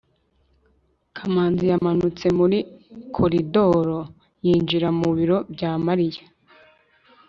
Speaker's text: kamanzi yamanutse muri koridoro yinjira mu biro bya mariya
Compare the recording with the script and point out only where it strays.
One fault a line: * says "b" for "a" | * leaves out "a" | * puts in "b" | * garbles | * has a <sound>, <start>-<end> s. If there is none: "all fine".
* has a dropout, 1.8-1.8 s